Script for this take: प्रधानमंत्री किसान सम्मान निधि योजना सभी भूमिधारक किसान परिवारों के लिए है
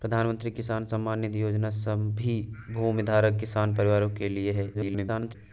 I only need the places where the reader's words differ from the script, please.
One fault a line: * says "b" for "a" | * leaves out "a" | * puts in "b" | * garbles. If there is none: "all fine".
* garbles